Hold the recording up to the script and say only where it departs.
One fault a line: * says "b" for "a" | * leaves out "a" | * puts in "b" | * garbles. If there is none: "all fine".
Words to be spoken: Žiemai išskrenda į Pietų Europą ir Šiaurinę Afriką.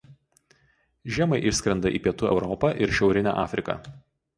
all fine